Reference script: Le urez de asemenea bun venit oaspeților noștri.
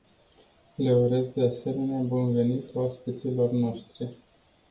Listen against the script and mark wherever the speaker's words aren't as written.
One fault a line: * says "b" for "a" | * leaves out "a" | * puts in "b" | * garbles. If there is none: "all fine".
all fine